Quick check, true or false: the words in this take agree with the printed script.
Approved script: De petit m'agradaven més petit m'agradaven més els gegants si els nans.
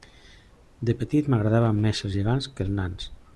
false